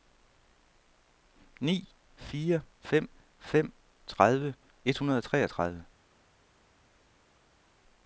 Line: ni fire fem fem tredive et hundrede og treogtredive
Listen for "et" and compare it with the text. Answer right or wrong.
right